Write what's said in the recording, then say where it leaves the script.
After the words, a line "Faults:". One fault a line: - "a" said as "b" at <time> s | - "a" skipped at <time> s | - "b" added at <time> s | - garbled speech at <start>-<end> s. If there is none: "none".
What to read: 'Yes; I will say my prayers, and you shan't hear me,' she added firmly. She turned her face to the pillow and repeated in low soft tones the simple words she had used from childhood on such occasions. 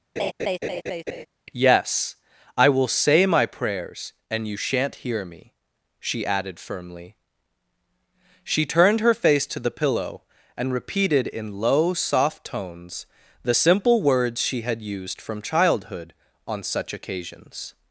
'Yes; I will say my prayers, and you shan't hear me,' she added firmly. She turned her face to the pillow and repeated in low soft tones the simple words she had used from childhood on such occasions.
Faults:
none